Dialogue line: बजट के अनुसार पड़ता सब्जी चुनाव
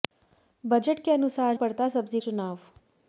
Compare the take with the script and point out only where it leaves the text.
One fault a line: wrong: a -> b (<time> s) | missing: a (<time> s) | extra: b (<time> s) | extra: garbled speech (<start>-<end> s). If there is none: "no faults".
no faults